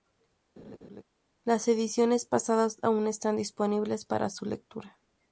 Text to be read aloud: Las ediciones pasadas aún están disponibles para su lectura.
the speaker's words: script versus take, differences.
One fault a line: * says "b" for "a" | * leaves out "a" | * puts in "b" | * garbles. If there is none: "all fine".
all fine